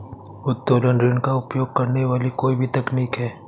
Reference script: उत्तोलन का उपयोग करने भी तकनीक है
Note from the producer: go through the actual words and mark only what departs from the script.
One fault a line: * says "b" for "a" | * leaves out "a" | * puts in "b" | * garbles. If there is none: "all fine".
* puts in "ऋण"
* puts in "वाली कोई"